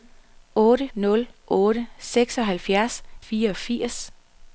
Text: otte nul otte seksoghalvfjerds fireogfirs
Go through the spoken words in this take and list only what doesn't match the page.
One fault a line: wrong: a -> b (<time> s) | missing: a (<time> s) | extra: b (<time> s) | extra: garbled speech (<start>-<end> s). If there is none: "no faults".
no faults